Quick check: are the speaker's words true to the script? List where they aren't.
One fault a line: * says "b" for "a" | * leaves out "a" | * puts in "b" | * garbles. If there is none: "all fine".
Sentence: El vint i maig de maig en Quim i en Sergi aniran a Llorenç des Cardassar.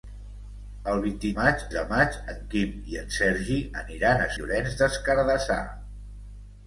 all fine